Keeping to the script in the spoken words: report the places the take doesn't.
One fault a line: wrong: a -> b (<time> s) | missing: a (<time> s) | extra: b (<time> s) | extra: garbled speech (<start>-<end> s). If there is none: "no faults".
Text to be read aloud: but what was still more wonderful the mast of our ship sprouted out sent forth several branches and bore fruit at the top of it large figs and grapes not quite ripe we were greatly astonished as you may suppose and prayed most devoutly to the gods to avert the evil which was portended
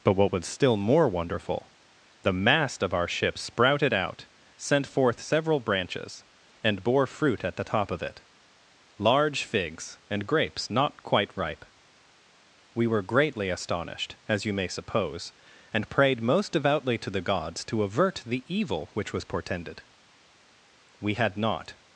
extra: we had not (21.0 s)